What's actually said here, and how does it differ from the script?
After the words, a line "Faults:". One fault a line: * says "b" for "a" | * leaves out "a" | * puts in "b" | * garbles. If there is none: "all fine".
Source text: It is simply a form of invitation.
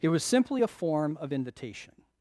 It was simply a form of invitation.
Faults:
* says "was" for "is"